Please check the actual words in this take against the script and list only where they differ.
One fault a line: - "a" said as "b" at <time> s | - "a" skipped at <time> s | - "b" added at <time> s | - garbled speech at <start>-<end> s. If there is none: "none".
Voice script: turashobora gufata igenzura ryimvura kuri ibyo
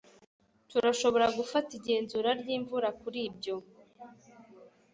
none